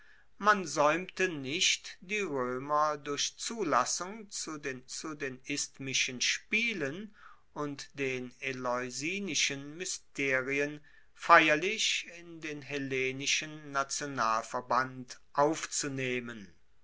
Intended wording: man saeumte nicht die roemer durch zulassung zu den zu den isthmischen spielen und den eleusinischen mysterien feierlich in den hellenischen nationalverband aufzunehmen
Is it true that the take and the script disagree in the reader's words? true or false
false